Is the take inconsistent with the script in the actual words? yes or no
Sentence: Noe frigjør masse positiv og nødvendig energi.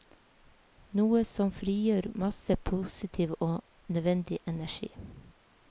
yes